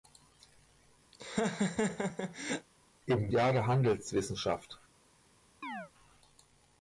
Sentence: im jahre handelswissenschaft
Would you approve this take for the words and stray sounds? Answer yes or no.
no